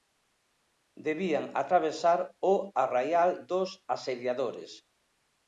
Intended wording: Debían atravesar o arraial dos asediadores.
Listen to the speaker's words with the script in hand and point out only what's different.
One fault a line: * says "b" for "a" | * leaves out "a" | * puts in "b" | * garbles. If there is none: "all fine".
all fine